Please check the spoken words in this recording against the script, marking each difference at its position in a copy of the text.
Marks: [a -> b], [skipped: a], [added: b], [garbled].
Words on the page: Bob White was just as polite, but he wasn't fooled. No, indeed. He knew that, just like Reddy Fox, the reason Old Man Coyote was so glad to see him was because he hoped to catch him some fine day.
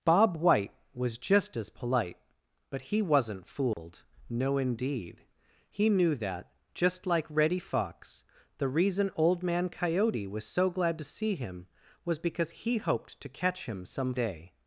Bob White was just as polite, but he wasn't fooled. No, indeed. He knew that, just like Reddy Fox, the reason Old Man Coyote was so glad to see him was because he hoped to catch him some [skipped: fine] day.